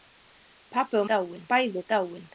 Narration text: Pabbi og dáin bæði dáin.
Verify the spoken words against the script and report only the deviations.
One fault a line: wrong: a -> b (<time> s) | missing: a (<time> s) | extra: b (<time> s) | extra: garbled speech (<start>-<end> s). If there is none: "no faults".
no faults